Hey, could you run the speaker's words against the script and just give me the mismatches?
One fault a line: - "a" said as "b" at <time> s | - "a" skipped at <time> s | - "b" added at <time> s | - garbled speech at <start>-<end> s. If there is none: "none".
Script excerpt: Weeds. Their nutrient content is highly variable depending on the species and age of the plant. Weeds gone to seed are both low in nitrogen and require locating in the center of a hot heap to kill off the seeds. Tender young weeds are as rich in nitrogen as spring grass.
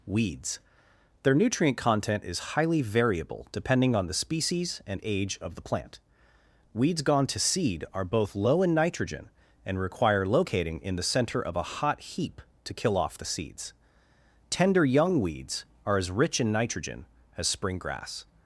none